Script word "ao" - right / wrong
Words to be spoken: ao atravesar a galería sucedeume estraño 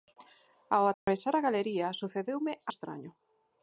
right